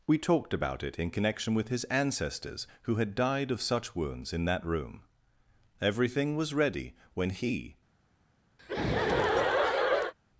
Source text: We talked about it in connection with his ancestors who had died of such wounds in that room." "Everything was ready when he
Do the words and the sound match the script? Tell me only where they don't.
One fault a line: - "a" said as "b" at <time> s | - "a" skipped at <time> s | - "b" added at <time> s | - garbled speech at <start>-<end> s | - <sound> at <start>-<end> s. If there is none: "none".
- laugh at 8.6-10.1 s